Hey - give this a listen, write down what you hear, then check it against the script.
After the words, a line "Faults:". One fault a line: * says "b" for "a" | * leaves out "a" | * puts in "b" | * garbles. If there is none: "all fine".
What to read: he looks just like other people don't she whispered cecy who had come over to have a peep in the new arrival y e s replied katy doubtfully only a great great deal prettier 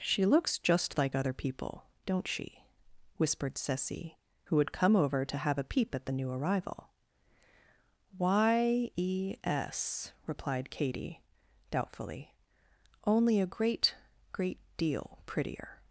she looks just like other people don't she whispered cecy who had come over to have a peep at the new arrival y e s replied katy doubtfully only a great great deal prettier
Faults:
* says "she" for "he"
* says "at" for "in"